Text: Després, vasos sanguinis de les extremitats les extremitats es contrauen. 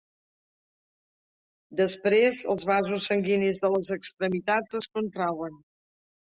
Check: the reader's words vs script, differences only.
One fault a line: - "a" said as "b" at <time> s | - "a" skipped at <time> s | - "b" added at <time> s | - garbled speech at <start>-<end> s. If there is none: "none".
- "els" added at 2.5 s
- "les extremitats" skipped at 4.8 s